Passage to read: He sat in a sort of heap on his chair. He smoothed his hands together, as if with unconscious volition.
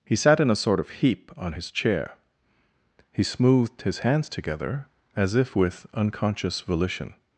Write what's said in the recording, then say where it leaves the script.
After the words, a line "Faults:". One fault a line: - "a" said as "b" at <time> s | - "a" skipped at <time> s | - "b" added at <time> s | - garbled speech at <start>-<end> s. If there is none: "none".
He sat in a sort of heap on his chair. He smoothed his hands together, as if with unconscious volition.
Faults:
none